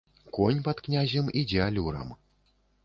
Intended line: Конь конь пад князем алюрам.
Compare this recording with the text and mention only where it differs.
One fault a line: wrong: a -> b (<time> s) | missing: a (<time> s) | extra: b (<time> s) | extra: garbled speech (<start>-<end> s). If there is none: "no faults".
missing: конь (0.6 s)
extra: ідзе (1.4 s)